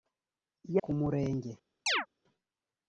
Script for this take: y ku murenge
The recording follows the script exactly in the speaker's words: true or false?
true